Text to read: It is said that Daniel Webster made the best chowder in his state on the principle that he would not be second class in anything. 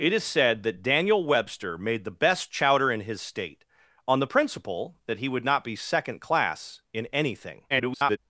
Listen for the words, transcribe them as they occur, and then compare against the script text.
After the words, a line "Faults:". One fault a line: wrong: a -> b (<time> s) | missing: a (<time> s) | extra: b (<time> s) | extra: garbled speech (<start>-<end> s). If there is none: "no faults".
It is said that Daniel Webster made the best chowder in his state on the principle that he would not be second class in anything. [garbled]
Faults:
extra: garbled speech (7.7-8.2 s)